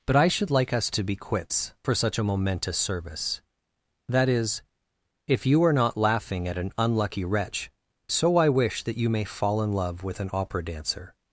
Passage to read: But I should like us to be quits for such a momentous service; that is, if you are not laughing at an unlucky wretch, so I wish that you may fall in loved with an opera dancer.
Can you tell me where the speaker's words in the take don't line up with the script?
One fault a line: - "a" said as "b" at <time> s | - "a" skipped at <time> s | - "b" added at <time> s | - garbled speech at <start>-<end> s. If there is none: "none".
- "loved" said as "love" at 9.7 s